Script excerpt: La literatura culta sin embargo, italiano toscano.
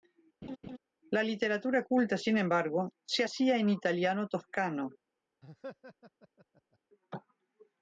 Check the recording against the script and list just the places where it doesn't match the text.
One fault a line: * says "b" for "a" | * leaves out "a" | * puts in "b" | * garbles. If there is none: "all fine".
* puts in "se hacía en"